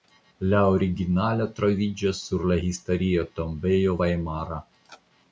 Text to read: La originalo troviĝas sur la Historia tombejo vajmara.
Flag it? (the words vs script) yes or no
no